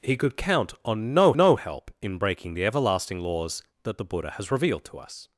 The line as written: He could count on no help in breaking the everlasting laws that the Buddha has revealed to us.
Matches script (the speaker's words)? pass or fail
fail